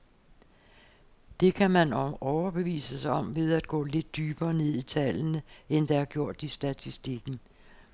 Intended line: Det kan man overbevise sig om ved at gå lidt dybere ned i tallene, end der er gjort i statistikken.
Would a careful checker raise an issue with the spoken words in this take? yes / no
no